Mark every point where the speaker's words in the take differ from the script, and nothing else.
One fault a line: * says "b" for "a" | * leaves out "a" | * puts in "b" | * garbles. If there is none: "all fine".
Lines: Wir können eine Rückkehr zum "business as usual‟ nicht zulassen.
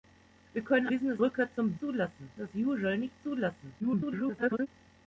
* says "business" for "eine"
* says "zulassen" for "business"
* garbles